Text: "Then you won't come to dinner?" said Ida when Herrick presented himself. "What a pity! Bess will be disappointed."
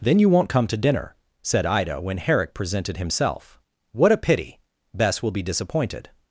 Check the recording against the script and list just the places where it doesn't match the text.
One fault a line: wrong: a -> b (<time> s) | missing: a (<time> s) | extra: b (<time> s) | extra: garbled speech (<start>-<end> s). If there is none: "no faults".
no faults